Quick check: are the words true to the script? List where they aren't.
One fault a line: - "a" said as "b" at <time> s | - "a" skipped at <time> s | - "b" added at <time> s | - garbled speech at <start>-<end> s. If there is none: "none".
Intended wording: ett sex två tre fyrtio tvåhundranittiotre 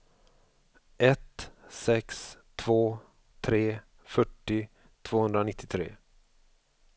none